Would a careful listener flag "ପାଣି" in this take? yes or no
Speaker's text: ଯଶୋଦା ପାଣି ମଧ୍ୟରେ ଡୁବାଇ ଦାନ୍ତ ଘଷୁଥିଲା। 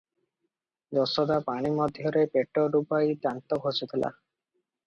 no